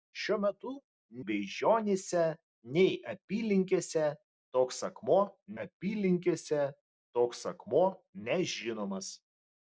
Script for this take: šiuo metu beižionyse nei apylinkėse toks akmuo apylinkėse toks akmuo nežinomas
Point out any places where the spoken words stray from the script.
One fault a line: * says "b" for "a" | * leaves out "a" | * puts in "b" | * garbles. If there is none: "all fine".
all fine